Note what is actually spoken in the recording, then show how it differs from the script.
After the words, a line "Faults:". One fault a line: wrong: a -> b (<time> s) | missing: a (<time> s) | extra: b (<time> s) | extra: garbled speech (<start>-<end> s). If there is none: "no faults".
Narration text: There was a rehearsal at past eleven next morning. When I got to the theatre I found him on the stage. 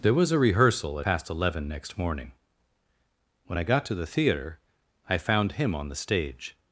There was a rehearsal at past eleven next morning. When I got to the theatre I found him on the stage.
Faults:
no faults